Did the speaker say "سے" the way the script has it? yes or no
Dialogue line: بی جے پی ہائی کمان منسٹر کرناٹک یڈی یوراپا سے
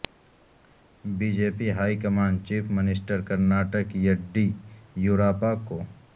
no